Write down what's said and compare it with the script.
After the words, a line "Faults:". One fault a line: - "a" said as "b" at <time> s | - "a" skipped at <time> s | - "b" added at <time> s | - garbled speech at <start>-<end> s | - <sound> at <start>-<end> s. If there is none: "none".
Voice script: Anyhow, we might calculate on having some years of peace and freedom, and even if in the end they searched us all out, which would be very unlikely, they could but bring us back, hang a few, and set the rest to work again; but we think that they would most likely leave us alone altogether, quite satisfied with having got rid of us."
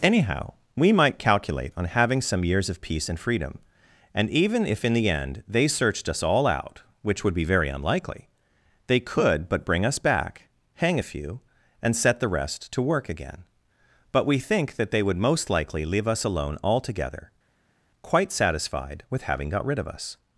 Anyhow, we might calculate on having some years of peace and freedom, and even if in the end they searched us all out, which would be very unlikely, they could but bring us back, hang a few, and set the rest to work again; but we think that they would most likely leave us alone altogether, quite satisfied with having got rid of us."
Faults:
none